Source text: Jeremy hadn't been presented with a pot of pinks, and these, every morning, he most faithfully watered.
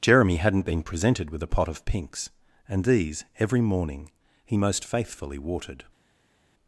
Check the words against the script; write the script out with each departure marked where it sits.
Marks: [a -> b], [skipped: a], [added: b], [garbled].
Jeremy hadn't been presented with a pot of pinks, and these, every morning, he most faithfully watered.